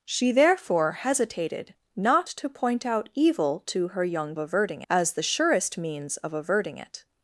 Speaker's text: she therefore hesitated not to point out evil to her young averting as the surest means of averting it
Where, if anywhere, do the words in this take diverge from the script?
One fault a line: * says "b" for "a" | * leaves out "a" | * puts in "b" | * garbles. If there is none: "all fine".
all fine